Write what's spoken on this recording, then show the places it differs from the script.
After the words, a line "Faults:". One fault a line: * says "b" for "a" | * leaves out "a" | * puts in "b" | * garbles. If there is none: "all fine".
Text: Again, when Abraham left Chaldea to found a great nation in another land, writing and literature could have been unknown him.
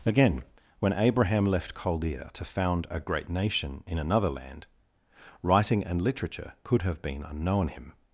Again, when Abraham left Chaldea to found a great nation in another land, writing and literature could have been unknown him.
Faults:
all fine